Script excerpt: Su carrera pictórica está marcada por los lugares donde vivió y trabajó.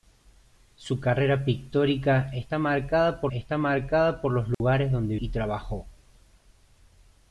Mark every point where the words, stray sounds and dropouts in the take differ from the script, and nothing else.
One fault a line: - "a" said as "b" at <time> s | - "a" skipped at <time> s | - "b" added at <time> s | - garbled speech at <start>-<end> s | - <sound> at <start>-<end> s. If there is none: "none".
- "está marcada por" added at 3.3 s
- dropout at 4.5-4.6 s
- "vivió" skipped at 5.2 s